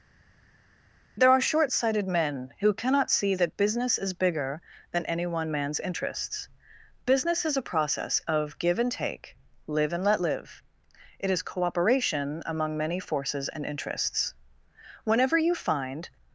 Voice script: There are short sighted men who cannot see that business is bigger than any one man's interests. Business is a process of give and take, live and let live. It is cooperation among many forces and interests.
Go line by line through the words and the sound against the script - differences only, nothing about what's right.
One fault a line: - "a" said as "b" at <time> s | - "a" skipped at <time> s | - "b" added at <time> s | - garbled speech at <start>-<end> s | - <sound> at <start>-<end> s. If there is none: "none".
- "Whenever you find" added at 15.1 s